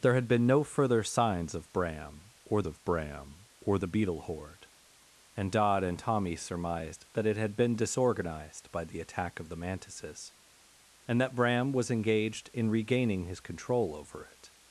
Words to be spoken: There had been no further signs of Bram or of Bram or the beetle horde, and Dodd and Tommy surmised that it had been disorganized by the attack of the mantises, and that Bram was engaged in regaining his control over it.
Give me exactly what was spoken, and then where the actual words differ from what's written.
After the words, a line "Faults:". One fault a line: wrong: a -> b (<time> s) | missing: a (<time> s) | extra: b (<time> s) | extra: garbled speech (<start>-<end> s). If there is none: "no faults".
There had been no further signs of Bram or of Bram or the beetle horde, and Dodd and Tommy surmised that it had been disorganized by the attack of the mantises, and that Bram was engaged in regaining his control over it.
Faults:
no faults